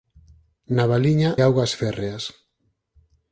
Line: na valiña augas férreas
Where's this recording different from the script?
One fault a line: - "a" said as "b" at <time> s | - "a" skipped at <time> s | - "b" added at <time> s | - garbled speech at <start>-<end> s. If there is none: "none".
none